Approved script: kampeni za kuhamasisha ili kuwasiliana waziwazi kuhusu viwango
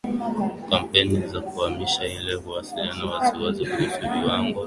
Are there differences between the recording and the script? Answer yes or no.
no